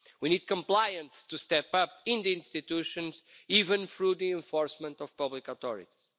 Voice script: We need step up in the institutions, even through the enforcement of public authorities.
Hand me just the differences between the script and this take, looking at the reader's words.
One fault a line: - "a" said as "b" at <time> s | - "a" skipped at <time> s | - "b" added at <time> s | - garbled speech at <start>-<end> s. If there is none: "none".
- "compliance to" added at 0.5 s